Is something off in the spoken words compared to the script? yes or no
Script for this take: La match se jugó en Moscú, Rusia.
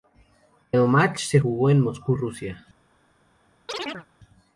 yes